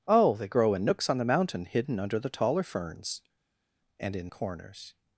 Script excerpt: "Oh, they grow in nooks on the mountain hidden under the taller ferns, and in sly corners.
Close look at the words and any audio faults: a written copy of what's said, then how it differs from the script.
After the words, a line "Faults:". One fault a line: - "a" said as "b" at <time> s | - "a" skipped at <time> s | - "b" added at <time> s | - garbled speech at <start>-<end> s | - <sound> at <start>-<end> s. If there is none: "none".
"Oh, they grow in nooks on the mountain hidden under the taller ferns, and in corners.
Faults:
- "sly" skipped at 4.3 s